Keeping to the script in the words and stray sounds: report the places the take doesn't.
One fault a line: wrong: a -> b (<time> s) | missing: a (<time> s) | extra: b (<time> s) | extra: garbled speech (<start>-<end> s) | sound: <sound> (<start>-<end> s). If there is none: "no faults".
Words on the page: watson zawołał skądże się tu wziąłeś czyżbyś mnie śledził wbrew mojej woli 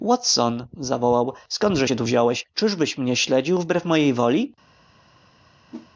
sound: whoosh (5.7-5.9 s)